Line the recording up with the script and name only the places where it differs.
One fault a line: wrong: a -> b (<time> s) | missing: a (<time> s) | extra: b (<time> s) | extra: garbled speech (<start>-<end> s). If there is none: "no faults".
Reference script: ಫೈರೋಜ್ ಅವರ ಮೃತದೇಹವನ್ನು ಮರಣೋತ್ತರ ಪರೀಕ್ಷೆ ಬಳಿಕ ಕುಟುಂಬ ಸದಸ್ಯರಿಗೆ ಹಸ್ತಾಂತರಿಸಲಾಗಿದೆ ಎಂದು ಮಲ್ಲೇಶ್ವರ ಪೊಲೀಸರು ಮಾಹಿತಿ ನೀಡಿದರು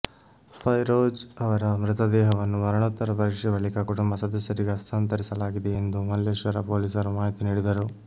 no faults